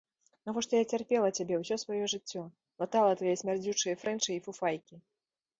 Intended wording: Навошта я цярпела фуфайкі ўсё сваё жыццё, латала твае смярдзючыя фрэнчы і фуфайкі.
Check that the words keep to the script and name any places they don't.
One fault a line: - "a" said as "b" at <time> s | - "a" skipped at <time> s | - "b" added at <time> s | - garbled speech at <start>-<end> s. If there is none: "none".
- "фуфайкі" said as "цябе" at 1.4 s